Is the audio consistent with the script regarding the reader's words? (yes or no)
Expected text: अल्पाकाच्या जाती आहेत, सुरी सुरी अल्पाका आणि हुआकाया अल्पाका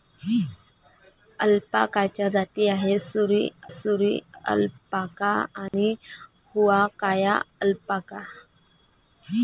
yes